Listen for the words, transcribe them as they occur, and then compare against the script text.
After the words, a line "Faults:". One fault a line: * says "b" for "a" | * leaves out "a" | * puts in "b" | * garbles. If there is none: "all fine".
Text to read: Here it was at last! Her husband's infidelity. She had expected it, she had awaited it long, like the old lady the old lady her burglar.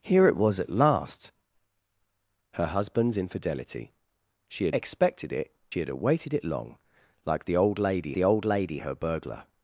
Here it was at last! Her husband's infidelity. She had expected it, she had awaited it long, like the old lady the old lady her burglar.
Faults:
all fine